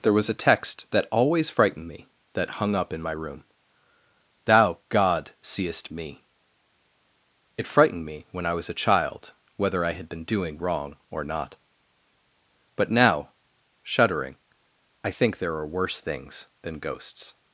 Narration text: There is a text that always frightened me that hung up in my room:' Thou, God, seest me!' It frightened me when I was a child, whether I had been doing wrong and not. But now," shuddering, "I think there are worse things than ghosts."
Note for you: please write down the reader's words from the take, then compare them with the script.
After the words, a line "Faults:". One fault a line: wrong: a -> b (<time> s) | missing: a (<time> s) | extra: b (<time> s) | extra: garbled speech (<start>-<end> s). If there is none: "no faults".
There was a text that always frightened me that hung up in my room:' Thou, God, seest me!' It frightened me when I was a child, whether I had been doing wrong or not. But now," shuddering, "I think there are worse things than ghosts."
Faults:
wrong: is -> was (0.1 s)
wrong: and -> or (11.1 s)